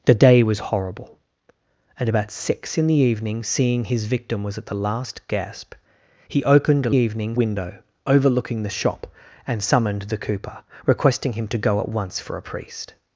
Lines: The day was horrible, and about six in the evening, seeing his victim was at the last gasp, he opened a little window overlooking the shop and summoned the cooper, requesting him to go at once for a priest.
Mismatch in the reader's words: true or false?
true